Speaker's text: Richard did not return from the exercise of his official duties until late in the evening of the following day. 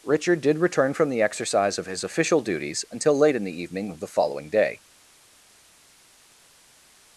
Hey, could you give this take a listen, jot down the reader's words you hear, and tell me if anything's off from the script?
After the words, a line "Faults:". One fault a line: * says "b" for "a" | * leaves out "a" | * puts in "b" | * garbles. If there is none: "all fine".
Richard did return from the exercise of his official duties until late in the evening of the following day.
Faults:
* leaves out "not"